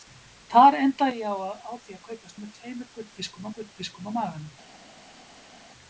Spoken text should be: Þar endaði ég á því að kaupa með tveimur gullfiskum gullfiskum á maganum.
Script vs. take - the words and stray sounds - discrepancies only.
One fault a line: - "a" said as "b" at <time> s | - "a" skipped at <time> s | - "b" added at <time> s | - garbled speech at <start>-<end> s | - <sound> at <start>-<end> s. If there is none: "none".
none